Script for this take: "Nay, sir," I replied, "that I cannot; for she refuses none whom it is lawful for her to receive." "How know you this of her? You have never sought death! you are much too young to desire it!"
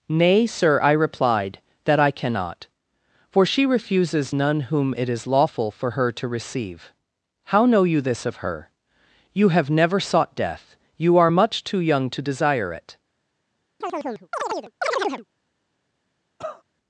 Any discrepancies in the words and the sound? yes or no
yes